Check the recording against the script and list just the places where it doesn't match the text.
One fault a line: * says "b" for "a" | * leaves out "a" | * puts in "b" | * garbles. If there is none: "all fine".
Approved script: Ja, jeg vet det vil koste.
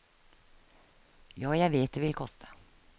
all fine